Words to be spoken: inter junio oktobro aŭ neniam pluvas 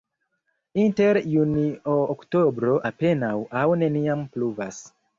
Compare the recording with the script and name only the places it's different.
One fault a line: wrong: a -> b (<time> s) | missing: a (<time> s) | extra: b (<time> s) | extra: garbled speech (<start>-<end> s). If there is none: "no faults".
extra: apenaŭ (2.9 s)